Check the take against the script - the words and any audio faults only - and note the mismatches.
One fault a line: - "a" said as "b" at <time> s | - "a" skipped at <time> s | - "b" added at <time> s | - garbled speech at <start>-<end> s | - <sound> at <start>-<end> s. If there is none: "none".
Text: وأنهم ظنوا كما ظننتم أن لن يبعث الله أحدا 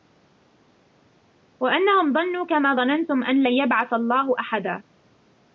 none